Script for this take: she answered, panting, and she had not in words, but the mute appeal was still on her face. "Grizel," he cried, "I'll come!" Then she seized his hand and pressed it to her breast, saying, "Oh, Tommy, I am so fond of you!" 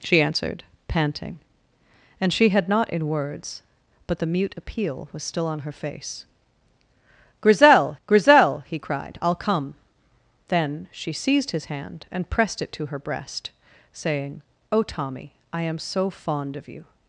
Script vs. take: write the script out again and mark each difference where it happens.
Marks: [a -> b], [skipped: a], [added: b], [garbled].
she answered, panting, and she had not in words, but the mute appeal was still on her face. "Grizel," [added: grizel] he cried, "I'll come!" Then she seized his hand and pressed it to her breast, saying, "Oh, Tommy, I am so fond of you!"